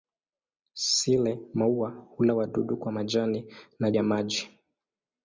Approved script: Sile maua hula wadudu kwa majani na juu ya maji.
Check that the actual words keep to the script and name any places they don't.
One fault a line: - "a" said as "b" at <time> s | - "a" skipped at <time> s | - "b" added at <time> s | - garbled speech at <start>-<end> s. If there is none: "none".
- "juu" skipped at 3.9 s